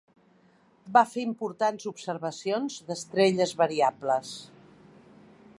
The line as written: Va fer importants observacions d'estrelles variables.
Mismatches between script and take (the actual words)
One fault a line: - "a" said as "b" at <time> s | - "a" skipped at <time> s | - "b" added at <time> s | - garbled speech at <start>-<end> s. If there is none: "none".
none